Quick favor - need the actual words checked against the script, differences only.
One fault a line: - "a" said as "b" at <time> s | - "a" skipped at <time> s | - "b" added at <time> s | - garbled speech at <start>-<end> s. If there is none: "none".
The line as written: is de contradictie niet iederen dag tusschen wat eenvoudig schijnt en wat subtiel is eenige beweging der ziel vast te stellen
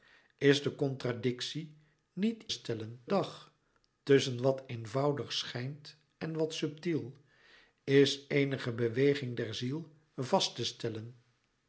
- "iederen" said as "stellen" at 2.5 s